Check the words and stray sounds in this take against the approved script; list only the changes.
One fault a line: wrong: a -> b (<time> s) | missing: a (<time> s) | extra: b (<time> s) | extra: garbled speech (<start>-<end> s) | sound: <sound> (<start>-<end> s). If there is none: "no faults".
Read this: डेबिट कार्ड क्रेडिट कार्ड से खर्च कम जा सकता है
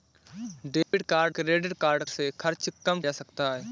sound: dropout (0.8-0.9 s)